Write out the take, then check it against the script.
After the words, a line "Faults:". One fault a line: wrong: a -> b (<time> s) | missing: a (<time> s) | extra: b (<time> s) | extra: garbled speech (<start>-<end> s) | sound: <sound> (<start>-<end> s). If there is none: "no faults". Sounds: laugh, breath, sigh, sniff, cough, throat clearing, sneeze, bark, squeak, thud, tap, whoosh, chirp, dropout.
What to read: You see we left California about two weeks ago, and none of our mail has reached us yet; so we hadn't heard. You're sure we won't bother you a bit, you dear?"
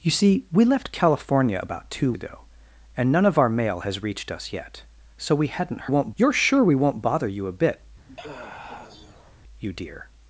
You see we left California about two ago, and none of our mail has reached us yet; so we hadn't won't. You're sure we won't bother you a bit, you dear?"
Faults:
missing: weeks (2.1 s)
wrong: heard -> won't (5.8 s)
sound: sigh (8.1-9.4 s)